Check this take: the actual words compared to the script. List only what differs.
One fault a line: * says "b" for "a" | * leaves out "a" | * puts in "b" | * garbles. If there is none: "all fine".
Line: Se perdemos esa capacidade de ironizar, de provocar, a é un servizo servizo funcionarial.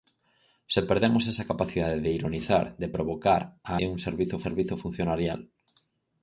all fine